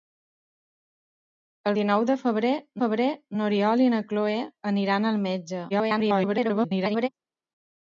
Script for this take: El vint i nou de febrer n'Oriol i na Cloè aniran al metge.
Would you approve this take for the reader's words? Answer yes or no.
no